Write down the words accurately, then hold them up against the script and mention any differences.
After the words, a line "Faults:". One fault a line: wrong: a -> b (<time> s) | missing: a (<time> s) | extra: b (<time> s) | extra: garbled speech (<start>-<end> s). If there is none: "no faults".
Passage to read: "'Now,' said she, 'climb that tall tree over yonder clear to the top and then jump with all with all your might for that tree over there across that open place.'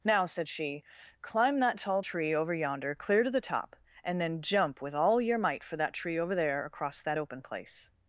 "'Now,' said she, 'climb that tall tree over yonder clear to the top and then jump with all your might for that tree over there across that open place.'
Faults:
missing: with all (5.2 s)